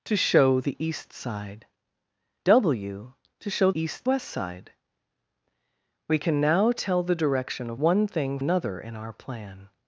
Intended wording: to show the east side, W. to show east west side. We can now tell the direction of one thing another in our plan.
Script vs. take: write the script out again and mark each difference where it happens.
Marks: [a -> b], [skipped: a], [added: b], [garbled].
to show the east side, W. to show east west side. We can now tell the direction of one thing another in our plan.